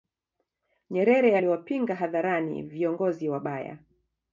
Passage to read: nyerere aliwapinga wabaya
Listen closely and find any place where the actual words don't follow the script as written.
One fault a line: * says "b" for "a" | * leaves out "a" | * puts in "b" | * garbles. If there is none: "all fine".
* puts in "hadharani viongozi"